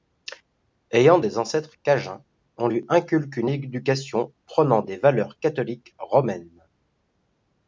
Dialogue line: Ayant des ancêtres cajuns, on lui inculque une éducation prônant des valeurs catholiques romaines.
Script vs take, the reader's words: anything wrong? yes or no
no